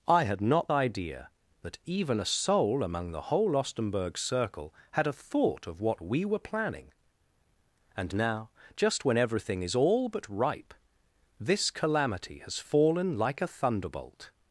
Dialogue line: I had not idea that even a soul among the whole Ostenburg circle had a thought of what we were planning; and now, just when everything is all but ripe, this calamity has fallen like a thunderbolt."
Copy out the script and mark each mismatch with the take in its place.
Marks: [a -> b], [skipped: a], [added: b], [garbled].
I had not idea that even a soul among the whole Ostenburg circle had a thought of what we were planning; and now, just when everything is all but ripe, this calamity has fallen like a thunderbolt."